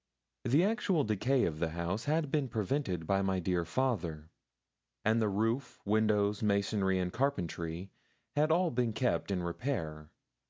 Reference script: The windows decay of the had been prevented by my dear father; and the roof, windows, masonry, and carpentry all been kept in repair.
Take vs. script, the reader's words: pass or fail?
fail